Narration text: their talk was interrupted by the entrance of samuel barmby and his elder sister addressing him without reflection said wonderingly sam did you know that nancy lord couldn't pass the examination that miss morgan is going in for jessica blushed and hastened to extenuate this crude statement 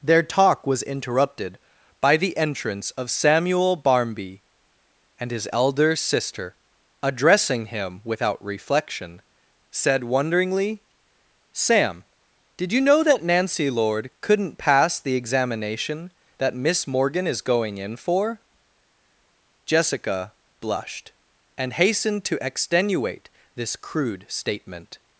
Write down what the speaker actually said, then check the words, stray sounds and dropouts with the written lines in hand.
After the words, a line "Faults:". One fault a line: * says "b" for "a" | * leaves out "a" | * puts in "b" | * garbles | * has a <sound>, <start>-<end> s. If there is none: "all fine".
their talk was interrupted by the entrance of samuel barmby and his elder sister addressing him without reflection said wonderingly sam did you know that nancy lord couldn't pass the examination that miss morgan is going in for jessica blushed and hastened to extenuate this crude statement
Faults:
all fine